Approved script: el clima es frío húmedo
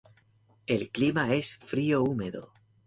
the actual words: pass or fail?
pass